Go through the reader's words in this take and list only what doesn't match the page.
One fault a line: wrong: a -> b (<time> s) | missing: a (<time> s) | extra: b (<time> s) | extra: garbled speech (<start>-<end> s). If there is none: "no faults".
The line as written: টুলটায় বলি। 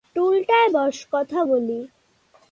extra: বস কথা (0.7 s)